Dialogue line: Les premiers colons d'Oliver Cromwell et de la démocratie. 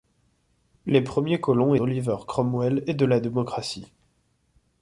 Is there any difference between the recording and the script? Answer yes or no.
no